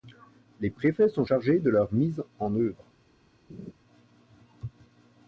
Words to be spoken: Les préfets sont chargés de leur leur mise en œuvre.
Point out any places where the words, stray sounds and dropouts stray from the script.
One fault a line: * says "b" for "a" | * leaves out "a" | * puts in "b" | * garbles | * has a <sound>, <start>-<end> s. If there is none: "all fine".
* leaves out "leur"
* has a laugh, 3.5-3.7 s